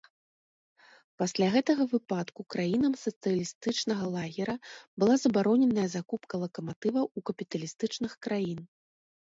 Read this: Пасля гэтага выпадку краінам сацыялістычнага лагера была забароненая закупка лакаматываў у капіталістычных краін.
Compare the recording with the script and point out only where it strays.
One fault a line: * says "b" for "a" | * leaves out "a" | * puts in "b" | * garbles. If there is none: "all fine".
all fine